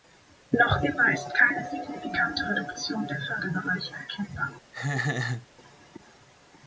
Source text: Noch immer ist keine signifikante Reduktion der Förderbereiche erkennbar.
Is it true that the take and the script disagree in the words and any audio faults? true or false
true